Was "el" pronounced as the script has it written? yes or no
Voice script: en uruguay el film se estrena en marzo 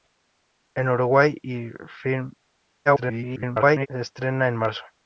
yes